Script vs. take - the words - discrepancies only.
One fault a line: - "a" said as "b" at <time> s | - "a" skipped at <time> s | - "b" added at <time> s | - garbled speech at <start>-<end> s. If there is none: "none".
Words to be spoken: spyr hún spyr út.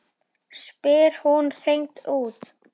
- "spyr" said as "hreint" at 1.6 s